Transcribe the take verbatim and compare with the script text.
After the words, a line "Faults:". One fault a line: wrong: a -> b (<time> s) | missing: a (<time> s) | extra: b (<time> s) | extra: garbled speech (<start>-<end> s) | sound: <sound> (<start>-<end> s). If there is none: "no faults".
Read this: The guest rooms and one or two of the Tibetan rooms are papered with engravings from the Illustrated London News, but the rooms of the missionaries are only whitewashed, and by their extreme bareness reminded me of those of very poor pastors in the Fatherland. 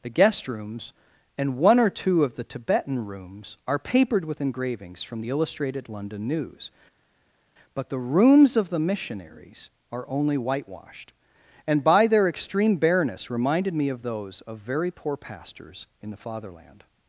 The guest rooms and one or two of the Tibetan rooms are papered with engravings from the Illustrated London News, but the rooms of the missionaries are only whitewashed, and by their extreme bareness reminded me of those of very poor pastors in the Fatherland.
Faults:
no faults